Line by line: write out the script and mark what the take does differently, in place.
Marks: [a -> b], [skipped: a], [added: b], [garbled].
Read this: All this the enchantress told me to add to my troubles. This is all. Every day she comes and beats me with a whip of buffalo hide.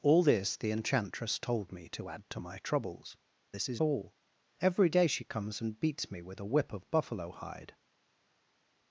All this the enchantress told me to add to my troubles. This is all. Every day she comes and beats me with a whip of buffalo hide.